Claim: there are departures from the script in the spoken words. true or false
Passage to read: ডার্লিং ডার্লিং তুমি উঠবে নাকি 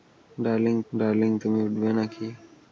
false